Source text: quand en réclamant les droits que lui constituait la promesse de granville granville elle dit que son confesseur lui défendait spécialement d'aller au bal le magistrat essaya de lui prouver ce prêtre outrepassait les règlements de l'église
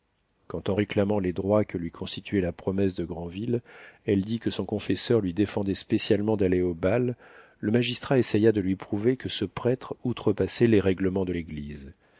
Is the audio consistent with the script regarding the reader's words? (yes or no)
no